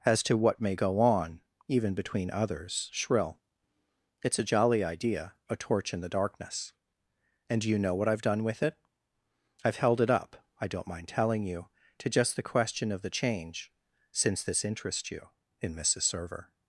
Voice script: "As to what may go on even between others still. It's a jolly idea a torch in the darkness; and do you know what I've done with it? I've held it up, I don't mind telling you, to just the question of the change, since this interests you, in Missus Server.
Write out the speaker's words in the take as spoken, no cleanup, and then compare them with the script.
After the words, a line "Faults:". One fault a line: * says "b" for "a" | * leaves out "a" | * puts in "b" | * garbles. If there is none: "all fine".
"As to what may go on even between others shrill. It's a jolly idea a torch in the darkness; and do you know what I've done with it? I've held it up, I don't mind telling you, to just the question of the change, since this interests you, in Missus Server.
Faults:
* says "shrill" for "still"